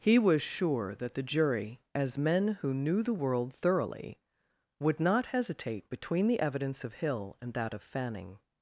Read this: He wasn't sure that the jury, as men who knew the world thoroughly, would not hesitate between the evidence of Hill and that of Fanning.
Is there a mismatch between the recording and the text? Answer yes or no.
yes